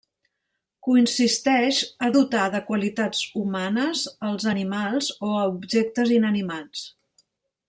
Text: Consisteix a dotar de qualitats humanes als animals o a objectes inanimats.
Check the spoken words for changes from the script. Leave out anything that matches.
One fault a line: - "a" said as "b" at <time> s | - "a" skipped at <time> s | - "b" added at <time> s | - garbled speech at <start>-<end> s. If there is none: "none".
none